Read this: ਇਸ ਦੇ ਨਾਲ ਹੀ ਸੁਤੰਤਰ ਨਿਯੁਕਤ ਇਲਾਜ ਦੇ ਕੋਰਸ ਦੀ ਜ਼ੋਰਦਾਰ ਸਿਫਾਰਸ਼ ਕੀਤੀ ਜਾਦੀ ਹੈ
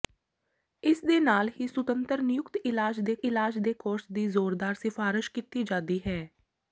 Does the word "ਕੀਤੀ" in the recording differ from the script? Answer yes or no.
no